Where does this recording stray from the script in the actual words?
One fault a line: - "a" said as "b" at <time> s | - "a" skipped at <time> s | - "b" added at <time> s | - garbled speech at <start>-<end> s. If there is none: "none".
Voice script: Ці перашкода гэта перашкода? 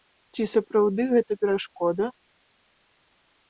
- "перашкода" said as "сапраўды" at 0.5 s